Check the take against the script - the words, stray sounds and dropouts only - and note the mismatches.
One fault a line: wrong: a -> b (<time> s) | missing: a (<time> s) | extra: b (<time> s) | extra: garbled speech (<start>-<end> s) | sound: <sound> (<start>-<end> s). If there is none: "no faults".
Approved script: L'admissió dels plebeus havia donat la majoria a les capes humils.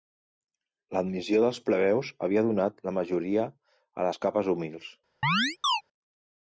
sound: chirp (5.2-5.8 s)